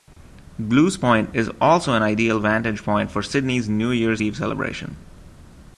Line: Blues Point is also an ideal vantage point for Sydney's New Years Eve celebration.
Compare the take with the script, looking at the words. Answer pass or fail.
pass